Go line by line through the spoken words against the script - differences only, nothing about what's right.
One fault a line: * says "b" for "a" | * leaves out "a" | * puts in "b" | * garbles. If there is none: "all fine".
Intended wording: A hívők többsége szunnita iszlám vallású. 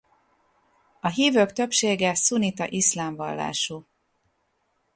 all fine